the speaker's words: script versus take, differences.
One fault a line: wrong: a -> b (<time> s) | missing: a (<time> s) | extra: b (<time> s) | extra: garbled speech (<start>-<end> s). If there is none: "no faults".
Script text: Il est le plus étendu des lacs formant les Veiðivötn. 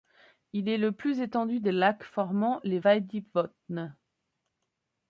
no faults